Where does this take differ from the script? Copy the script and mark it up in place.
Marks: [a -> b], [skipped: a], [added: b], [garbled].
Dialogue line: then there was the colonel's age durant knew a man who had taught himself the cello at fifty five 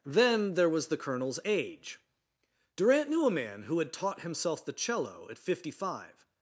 then there was the colonel's age durant knew a man who had taught himself the cello at fifty five